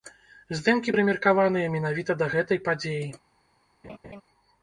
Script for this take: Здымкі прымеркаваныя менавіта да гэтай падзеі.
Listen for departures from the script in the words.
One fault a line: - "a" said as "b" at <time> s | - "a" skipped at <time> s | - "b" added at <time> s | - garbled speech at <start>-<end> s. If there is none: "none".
none